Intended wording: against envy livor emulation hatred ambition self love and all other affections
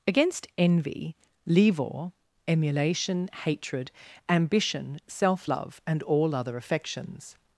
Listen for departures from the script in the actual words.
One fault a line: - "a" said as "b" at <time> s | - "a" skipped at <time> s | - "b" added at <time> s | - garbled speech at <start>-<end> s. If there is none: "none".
none